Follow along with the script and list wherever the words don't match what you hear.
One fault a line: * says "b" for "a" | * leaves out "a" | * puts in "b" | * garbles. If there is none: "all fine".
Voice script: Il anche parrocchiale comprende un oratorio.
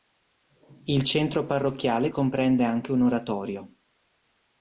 * says "centro" for "anche"
* puts in "anche"